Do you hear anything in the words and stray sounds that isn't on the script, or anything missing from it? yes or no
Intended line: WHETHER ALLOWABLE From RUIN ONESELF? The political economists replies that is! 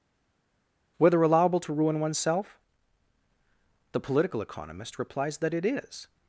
yes